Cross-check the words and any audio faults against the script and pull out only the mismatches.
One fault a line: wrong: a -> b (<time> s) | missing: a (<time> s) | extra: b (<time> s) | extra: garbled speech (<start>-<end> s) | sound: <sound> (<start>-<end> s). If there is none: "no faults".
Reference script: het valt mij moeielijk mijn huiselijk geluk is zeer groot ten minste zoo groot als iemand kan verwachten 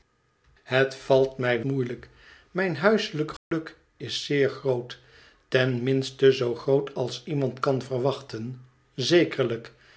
sound: dropout (3.4-3.5 s)